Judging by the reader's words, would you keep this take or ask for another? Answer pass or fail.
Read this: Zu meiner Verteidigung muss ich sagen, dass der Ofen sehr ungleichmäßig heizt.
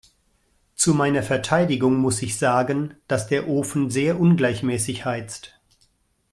pass